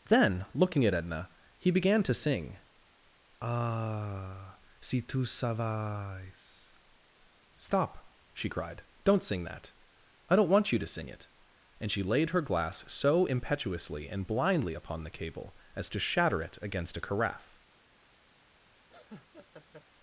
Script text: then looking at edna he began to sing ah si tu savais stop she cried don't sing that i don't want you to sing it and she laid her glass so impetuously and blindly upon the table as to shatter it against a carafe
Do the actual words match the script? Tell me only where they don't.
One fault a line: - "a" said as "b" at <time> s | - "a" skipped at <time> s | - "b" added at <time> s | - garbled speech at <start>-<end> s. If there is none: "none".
- "table" said as "cable" at 15.2 s